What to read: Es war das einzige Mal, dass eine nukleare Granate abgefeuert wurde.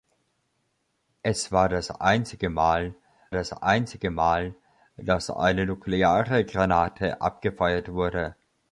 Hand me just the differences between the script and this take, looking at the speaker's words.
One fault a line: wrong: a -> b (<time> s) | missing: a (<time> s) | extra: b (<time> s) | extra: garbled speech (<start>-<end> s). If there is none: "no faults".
extra: das einzige Mal (3.3 s)